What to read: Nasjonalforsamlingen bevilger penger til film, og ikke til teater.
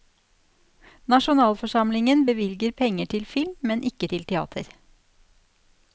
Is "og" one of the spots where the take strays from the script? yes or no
yes